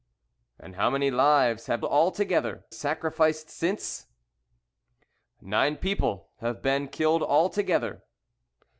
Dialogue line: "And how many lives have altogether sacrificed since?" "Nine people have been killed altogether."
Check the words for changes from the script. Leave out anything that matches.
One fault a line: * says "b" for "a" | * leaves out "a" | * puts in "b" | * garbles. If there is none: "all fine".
all fine